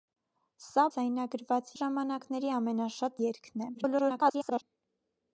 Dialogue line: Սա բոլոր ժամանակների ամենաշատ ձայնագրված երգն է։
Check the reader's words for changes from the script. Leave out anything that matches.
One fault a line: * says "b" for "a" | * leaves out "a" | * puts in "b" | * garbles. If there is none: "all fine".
* says "ձայնագրված" for "բոլոր"
* leaves out "ձայնագրված"
* garbles